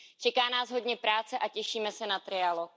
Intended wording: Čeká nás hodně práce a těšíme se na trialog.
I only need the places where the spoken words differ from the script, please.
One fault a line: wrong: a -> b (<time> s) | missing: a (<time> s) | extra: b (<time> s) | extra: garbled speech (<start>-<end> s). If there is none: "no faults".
no faults